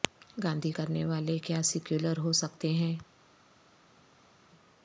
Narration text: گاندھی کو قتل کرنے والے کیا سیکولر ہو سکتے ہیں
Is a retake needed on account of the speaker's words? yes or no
yes